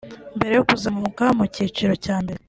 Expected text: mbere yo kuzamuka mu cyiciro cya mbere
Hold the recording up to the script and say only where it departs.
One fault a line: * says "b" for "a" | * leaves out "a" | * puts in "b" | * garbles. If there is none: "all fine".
all fine